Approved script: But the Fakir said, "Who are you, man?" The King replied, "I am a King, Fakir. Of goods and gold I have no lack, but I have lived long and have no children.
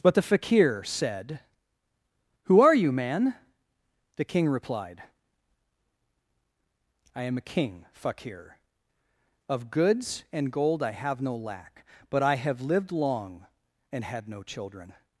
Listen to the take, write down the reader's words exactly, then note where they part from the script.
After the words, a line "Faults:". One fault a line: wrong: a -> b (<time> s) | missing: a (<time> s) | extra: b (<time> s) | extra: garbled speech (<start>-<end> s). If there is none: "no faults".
But the Fakir said, "Who are you, man?" The King replied, "I am a King, Fakir. Of goods and gold I have no lack, but I have lived long and had no children.
Faults:
wrong: have -> had (14.0 s)